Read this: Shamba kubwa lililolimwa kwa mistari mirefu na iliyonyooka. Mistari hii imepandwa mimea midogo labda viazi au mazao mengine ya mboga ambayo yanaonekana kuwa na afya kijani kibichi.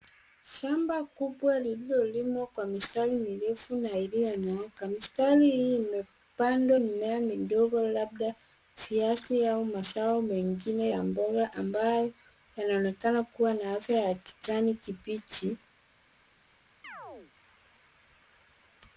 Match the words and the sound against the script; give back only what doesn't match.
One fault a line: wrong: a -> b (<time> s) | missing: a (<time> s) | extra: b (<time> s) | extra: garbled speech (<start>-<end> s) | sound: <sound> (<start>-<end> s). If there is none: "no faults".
extra: ya (14.0 s)
sound: chirp (16.8-17.3 s)